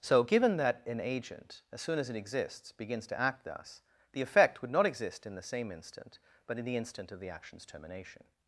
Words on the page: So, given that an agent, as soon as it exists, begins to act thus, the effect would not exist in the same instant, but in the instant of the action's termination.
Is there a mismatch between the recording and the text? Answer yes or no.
no